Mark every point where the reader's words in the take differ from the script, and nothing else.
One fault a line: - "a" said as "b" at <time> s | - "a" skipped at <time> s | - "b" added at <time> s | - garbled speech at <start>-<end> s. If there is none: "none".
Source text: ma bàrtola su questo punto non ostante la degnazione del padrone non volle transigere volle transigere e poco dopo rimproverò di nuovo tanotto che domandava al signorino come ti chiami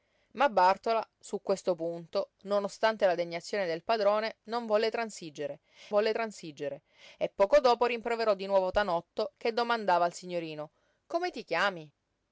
none